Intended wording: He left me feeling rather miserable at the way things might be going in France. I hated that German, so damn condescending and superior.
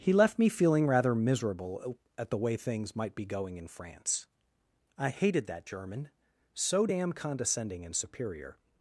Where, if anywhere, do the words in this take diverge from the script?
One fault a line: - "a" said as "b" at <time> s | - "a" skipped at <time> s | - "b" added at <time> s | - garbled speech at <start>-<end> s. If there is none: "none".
none